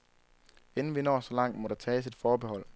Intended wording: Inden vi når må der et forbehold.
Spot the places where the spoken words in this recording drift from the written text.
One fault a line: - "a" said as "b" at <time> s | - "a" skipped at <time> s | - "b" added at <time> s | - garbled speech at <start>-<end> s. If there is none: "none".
- "så langt" added at 1.2 s
- "tages" added at 1.8 s